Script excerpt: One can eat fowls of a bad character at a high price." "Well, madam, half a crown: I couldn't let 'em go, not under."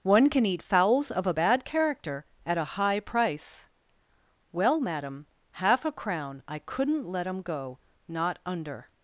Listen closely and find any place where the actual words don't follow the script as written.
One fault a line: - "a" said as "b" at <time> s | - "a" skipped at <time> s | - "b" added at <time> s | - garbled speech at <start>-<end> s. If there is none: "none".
none